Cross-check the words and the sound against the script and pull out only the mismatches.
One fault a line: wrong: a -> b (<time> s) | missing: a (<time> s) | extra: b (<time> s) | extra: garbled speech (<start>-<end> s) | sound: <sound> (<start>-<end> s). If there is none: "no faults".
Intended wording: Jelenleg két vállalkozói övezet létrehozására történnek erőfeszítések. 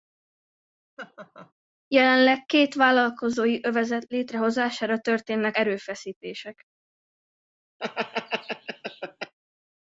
sound: laugh (1.0-1.5 s)
sound: laugh (7.8-9.3 s)